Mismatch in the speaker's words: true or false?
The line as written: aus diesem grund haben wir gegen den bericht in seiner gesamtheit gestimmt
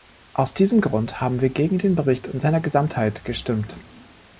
false